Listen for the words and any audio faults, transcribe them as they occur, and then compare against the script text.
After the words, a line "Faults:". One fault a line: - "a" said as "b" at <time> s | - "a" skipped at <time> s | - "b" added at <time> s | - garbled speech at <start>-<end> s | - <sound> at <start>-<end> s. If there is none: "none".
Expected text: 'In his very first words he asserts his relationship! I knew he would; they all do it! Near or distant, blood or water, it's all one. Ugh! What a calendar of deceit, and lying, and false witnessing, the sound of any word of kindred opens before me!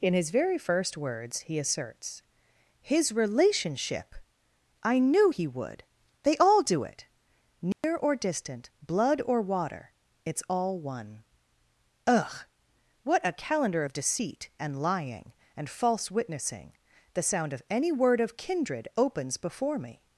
'In his very first words he asserts his relationship! I knew he would; they all do it! Near or distant, blood or water, it's all one. Ugh! What a calendar of deceit, and lying, and false witnessing, the sound of any word of kindred opens before me!
Faults:
- dropout at 7.7-7.8 s